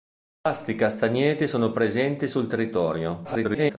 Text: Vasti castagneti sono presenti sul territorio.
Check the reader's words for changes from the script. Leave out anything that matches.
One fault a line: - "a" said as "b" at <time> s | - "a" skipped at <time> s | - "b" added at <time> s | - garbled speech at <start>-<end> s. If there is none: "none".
- garbled speech at 3.2-3.8 s